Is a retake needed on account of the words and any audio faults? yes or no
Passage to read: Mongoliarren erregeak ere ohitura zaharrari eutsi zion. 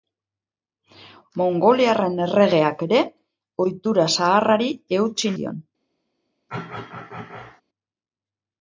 yes